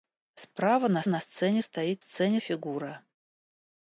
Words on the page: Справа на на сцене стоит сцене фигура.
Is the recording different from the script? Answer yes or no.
no